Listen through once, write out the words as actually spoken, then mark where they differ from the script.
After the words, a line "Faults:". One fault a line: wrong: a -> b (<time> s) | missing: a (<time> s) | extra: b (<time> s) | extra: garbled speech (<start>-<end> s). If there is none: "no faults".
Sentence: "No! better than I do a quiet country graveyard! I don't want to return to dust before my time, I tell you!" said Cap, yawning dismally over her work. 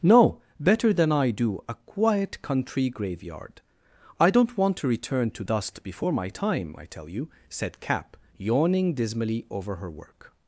"No! better than I do a quiet country graveyard! I don't want to return to dust before my time, I tell you!" said Cap, yawning dismally over her work.
Faults:
no faults